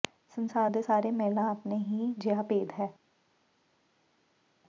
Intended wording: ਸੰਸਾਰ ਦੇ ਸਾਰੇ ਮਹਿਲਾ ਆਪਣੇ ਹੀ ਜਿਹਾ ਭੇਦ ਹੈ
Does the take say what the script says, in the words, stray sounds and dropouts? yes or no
yes